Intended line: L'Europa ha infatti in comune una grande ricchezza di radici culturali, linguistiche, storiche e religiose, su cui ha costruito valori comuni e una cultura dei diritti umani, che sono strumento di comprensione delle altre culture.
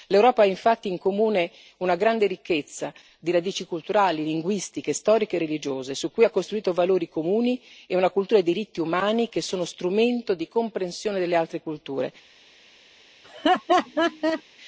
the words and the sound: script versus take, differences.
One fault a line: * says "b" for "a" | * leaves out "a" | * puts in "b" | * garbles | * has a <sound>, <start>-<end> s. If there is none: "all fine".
* has a laugh, 13.2-14.4 s